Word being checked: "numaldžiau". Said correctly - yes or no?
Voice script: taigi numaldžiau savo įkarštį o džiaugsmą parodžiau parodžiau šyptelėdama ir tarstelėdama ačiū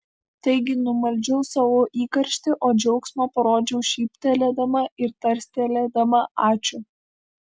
yes